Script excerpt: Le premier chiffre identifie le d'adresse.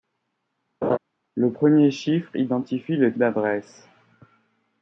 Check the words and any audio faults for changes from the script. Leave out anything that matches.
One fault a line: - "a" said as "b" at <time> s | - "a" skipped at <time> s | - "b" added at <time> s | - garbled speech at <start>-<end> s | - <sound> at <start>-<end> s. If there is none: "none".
- laugh at 0.8-1.0 s